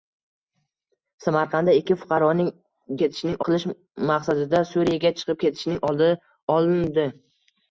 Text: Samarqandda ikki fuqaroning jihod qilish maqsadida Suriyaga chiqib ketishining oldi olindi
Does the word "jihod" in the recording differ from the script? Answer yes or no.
yes